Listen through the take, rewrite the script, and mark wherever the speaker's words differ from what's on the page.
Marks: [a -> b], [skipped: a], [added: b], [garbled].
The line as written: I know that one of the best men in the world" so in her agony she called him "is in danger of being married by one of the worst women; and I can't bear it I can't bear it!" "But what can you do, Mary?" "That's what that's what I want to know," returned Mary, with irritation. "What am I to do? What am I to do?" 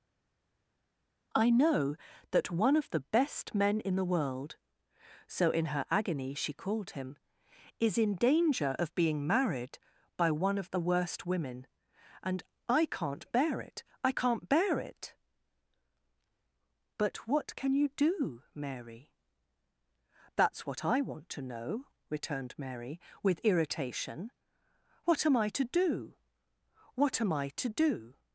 I know that one of the best men in the world" so in her agony she called him "is in danger of being married by one of the worst women; and I can't bear it I can't bear it!" "But what can you do, Mary?" "That's what [skipped: that's what] I want to know," returned Mary, with irritation. "What am I to do? What am I to do?"